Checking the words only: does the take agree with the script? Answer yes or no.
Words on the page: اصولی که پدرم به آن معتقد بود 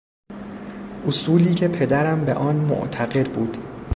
yes